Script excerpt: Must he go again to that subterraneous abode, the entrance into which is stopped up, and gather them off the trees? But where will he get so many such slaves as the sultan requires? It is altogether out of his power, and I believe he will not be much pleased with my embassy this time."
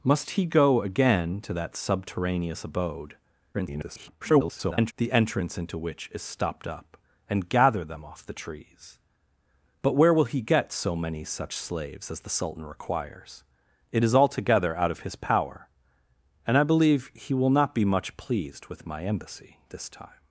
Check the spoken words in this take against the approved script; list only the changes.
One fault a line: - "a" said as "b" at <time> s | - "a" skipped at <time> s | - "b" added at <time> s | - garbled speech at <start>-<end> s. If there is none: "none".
- garbled speech at 3.5-4.9 s